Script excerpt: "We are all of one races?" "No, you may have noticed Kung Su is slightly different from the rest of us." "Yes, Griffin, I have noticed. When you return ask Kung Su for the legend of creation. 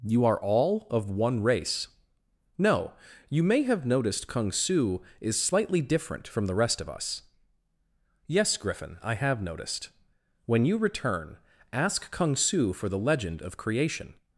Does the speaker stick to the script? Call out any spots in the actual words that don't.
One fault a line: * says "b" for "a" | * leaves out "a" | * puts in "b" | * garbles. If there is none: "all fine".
* says "You" for "We"
* says "race" for "races"